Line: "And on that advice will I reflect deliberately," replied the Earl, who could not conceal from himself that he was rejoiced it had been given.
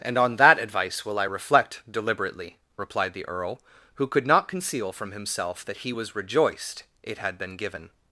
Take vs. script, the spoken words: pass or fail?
pass